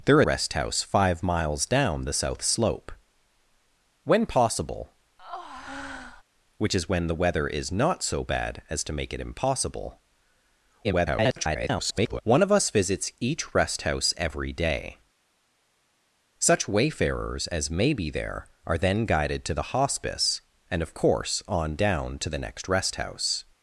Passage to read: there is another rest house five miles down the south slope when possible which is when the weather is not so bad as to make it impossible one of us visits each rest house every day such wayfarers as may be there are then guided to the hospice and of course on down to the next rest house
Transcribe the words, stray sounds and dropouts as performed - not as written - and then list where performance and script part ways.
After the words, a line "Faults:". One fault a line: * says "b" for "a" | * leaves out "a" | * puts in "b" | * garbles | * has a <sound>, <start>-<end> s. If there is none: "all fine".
there rest house five miles down the south slope when possible which is when the weather is not so bad as to make it impossible [garbled] one of us visits each rest house every day such wayfarers as may be there are then guided to the hospice and of course on down to the next rest house
Faults:
* leaves out "is another"
* has a breath, 5.2-6.2 s
* garbles